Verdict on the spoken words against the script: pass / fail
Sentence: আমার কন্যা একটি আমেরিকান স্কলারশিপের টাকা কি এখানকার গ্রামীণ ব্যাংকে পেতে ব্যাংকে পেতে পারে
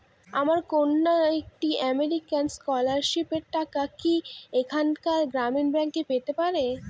fail